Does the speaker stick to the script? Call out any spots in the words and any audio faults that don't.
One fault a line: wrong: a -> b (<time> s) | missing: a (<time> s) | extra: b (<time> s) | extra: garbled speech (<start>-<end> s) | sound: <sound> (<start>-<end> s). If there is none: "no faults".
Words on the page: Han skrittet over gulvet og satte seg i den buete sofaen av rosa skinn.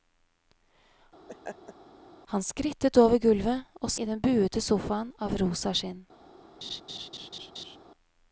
sound: laugh (1.3-1.7 s)
missing: satte seg (3.9 s)
sound: laugh (6.6-7.8 s)